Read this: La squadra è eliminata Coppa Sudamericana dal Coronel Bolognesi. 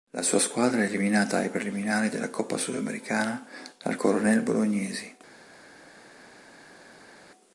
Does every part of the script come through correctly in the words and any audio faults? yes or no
no